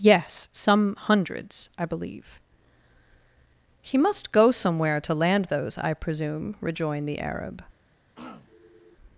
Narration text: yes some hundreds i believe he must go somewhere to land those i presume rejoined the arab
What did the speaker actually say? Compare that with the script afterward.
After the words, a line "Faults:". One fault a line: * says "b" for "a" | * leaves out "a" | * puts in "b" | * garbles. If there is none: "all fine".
yes some hundreds i believe he must go somewhere to land those i presume rejoined the arab
Faults:
all fine